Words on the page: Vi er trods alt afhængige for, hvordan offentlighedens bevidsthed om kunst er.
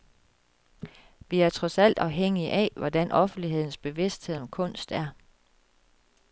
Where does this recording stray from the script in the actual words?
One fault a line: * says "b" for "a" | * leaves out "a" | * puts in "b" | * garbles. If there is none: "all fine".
* says "af" for "for"